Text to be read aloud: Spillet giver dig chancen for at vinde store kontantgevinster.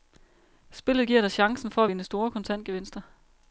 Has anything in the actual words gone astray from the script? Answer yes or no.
no